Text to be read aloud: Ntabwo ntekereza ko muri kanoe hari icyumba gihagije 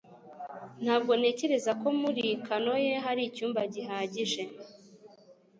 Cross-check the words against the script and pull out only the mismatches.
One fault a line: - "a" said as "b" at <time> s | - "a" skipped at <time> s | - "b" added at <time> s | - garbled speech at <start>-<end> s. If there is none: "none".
none